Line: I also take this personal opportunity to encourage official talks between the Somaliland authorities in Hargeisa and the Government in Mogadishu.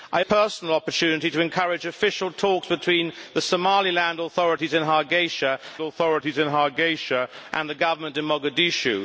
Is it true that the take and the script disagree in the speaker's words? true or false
true